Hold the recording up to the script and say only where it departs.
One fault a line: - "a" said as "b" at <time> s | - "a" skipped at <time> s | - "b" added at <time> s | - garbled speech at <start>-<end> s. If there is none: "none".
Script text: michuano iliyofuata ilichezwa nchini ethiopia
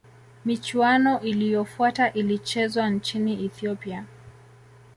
none